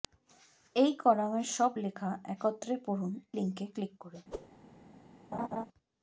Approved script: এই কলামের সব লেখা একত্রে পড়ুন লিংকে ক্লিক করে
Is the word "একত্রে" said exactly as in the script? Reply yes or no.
yes